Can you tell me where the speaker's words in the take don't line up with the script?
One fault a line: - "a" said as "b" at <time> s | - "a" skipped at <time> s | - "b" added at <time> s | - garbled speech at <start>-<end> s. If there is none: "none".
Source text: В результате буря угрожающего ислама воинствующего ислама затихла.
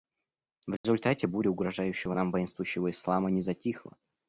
- "ислама" said as "нам" at 2.1 s
- "не" added at 3.3 s